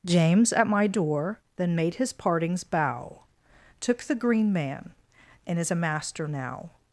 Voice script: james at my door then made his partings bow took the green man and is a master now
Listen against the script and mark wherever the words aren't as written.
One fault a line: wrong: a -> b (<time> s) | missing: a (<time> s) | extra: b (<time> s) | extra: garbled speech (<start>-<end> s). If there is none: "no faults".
no faults